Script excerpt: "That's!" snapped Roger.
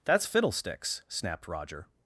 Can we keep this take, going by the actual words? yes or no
no